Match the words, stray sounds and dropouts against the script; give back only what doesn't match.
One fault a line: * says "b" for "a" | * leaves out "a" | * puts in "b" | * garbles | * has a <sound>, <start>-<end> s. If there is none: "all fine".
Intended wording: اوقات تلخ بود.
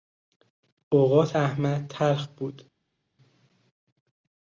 * puts in "احمد"